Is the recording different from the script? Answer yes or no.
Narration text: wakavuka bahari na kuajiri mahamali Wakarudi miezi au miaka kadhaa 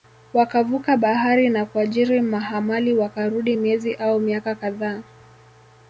no